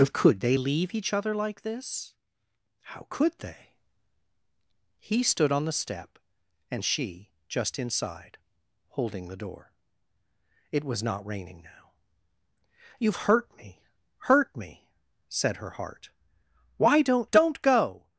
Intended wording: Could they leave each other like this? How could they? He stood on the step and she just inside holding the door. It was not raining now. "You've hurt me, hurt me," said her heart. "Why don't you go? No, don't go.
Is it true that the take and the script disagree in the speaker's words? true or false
true